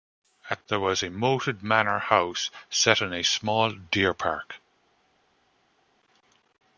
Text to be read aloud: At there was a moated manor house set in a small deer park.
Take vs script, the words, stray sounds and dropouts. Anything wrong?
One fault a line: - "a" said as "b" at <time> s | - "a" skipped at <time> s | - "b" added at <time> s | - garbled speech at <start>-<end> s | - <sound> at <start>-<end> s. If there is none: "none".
none